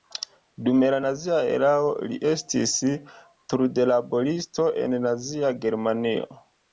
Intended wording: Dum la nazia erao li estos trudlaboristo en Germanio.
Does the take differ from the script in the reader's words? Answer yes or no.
yes